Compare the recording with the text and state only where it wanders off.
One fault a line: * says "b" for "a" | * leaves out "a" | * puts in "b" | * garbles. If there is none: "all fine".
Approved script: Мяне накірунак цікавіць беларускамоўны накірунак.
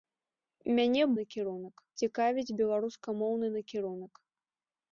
all fine